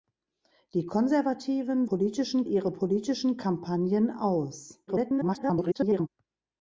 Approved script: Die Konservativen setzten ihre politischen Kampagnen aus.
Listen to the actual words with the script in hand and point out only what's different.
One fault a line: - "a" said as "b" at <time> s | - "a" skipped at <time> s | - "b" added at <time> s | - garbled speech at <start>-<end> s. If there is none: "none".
- "setzten" said as "politischen" at 1.8 s
- garbled speech at 4.9-6.1 s